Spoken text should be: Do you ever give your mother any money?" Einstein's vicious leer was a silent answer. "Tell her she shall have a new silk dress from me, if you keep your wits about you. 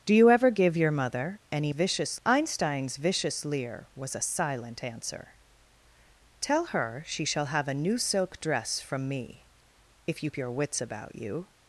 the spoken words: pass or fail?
fail